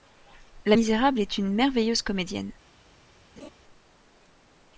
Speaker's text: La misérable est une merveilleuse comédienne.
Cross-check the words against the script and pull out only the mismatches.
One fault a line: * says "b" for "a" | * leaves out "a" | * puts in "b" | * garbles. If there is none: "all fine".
all fine